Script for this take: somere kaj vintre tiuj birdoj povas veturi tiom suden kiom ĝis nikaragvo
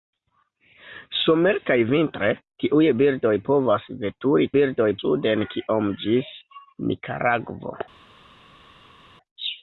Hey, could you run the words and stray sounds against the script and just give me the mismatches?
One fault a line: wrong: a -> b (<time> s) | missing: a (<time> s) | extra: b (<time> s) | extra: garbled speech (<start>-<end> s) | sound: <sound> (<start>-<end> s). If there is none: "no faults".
wrong: tiom -> birdoj (4.6 s)